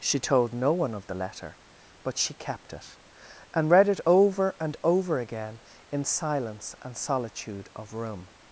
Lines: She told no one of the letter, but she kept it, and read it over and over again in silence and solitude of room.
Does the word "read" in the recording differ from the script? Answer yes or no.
no